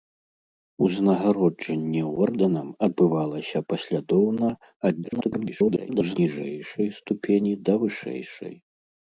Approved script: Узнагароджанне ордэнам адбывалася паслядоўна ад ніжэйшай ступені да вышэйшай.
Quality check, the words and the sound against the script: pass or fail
fail